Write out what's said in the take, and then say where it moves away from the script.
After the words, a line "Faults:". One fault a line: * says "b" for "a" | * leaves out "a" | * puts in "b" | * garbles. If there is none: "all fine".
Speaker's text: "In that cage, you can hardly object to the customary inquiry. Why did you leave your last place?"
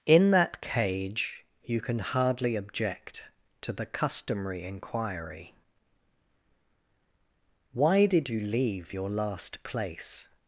"In that cage, you can hardly object to the customary inquiry. Why did you leave your last place?"
Faults:
all fine